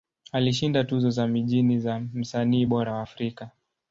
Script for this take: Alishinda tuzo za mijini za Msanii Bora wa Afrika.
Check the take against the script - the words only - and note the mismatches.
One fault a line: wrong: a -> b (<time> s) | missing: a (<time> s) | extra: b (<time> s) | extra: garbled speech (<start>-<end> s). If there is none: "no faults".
no faults